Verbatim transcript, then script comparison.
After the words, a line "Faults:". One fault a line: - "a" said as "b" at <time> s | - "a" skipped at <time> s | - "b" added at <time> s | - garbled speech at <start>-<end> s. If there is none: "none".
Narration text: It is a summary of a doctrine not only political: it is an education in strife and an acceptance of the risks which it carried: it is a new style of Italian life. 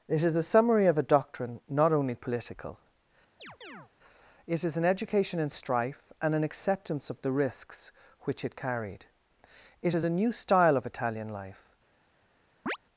It is a summary of a doctrine not only political: it is an education in strife and an acceptance of the risks which it carried: it is a new style of Italian life.
Faults:
none